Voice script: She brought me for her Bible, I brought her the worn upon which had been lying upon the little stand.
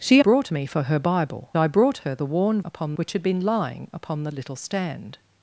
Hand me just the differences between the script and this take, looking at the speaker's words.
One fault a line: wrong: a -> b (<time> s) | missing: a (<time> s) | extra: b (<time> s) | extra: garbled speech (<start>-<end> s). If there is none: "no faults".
no faults